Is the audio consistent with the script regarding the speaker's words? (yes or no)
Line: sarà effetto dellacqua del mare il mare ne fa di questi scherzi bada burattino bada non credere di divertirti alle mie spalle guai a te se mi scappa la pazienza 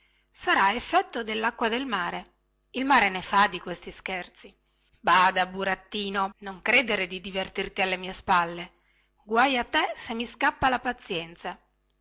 no